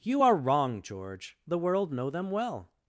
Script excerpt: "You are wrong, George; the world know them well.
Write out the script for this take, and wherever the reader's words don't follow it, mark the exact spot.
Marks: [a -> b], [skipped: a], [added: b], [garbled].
"You are wrong, George; the world know them well.